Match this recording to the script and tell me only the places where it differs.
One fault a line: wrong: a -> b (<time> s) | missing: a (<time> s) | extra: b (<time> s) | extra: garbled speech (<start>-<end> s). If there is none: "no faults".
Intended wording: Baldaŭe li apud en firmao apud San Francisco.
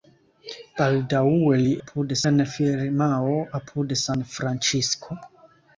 no faults